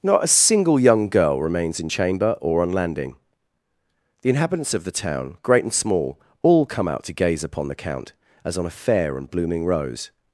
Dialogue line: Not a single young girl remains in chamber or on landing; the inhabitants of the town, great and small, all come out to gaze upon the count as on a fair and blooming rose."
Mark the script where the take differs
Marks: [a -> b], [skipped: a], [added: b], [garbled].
Not a single young girl remains in chamber or on landing; the inhabitants of the town, great and small, all come out to gaze upon the count as on a fair and blooming rose."